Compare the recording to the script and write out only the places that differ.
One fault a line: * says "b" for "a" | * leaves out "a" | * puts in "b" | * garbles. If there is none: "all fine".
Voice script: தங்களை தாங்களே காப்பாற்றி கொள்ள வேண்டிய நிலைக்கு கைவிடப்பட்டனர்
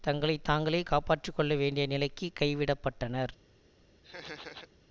all fine